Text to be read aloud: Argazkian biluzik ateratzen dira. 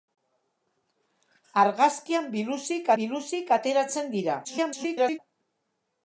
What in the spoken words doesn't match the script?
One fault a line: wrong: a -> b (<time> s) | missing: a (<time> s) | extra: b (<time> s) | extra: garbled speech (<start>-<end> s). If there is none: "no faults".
extra: biluzik (3.0 s)
extra: garbled speech (4.4-5.2 s)